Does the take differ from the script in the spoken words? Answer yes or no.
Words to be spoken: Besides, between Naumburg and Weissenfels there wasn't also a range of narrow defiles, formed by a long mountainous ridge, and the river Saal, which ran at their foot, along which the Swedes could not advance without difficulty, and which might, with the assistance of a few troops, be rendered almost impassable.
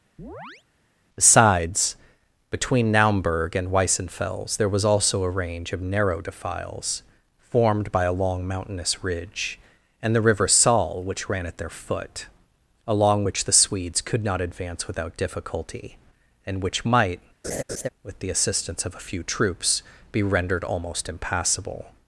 yes